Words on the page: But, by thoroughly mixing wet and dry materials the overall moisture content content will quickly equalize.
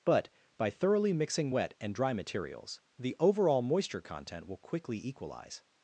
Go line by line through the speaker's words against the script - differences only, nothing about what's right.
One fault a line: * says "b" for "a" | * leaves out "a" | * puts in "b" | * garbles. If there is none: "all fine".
* leaves out "content"